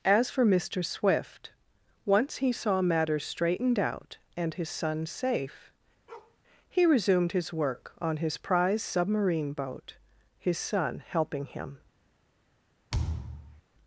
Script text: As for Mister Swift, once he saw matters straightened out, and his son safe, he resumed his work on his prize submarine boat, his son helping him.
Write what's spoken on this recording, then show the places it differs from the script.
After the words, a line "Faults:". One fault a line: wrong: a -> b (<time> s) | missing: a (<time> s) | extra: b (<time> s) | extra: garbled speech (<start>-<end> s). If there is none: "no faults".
As for Mister Swift, once he saw matters straightened out, and his son safe, he resumed his work on his prize submarine boat, his son helping him.
Faults:
no faults